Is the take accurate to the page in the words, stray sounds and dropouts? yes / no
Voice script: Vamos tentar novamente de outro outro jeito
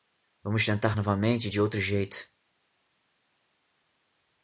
no